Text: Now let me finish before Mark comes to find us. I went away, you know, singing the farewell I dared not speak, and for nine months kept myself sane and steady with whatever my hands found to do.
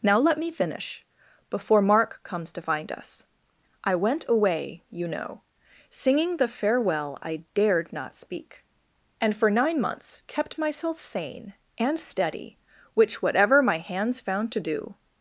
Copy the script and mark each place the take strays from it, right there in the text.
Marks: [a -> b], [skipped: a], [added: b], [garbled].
Now let me finish before Mark comes to find us. I went away, you know, singing the farewell I dared not speak, and for nine months kept myself sane and steady [with -> which] whatever my hands found to do.